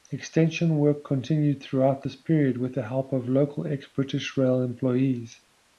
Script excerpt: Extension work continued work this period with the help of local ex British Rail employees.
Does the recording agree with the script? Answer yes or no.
no